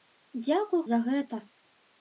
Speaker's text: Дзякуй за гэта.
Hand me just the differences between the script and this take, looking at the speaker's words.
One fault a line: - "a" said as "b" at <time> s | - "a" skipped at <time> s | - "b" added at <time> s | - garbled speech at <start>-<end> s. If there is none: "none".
none